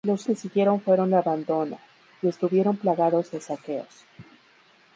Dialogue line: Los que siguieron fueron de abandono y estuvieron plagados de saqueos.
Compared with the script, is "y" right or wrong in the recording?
right